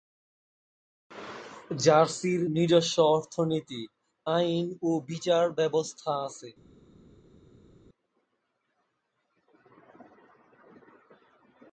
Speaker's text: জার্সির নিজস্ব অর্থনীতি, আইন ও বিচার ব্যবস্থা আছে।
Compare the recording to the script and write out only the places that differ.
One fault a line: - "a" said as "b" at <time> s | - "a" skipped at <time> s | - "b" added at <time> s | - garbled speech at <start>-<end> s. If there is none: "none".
none